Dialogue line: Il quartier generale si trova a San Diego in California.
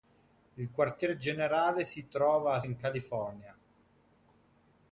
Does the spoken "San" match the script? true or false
false